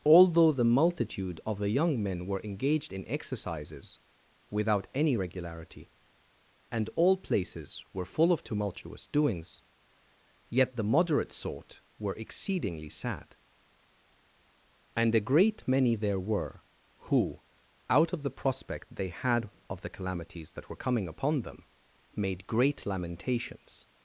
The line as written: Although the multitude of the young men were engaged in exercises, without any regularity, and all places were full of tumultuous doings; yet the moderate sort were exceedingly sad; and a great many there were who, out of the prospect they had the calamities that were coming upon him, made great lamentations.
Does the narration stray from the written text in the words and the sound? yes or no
yes